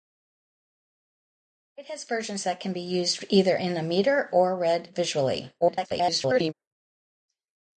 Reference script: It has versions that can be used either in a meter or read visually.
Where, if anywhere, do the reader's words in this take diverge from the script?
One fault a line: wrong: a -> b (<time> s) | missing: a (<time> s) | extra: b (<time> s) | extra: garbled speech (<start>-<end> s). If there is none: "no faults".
extra: garbled speech (5.6-6.5 s)